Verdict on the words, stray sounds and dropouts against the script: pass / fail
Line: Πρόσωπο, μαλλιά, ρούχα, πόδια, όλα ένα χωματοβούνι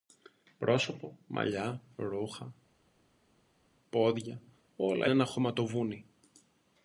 pass